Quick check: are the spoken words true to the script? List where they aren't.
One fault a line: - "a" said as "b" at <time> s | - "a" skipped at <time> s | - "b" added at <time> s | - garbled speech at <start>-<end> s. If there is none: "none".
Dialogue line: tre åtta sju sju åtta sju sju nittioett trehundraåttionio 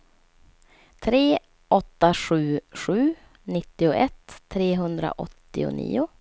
- "åtta sju sju" skipped at 3.1 s